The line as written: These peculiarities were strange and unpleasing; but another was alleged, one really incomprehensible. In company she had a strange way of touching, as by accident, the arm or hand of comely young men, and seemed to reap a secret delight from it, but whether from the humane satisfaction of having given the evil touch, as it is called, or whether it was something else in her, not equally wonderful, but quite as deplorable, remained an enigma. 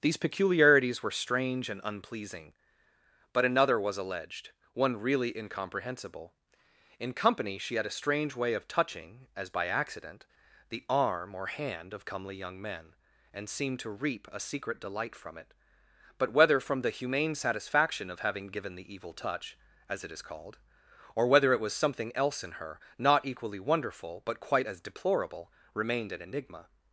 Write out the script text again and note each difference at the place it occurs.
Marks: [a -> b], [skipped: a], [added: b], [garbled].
These peculiarities were strange and unpleasing; but another was alleged, one really incomprehensible. In company she had a strange way of touching, as by accident, the arm or hand of comely young men, and seemed to reap a secret delight from it, but whether from the humane satisfaction of having given the evil touch, as it is called, or whether it was something else in her, not equally wonderful, but quite as deplorable, remained an enigma.